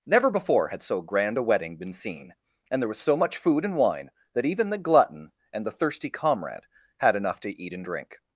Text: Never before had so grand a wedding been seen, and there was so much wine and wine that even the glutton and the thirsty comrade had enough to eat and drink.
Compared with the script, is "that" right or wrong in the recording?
right